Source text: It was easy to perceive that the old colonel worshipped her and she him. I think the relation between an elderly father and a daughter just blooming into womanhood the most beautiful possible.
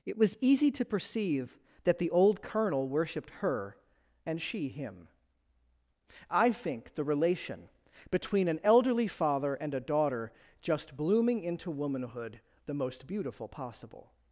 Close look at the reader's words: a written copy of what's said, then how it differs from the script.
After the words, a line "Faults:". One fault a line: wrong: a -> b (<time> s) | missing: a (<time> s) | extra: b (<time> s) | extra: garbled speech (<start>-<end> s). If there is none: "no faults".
It was easy to perceive that the old colonel worshipped her and she him. I think the relation between an elderly father and a daughter just blooming into womanhood the most beautiful possible.
Faults:
no faults